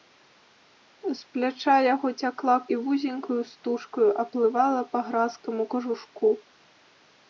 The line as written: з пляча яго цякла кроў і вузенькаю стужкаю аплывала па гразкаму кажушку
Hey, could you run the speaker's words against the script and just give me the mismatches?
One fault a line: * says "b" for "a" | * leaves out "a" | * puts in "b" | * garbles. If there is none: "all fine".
* leaves out "кроў"